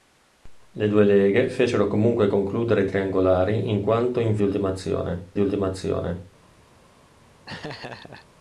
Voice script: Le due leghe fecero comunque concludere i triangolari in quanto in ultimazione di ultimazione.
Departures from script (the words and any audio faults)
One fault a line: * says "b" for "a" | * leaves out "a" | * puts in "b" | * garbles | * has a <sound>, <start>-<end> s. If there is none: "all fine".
* has a laugh, 7.5-8.3 s